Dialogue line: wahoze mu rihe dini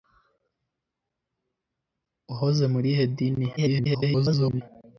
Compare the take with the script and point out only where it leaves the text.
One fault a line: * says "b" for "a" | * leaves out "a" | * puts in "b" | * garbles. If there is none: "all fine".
* garbles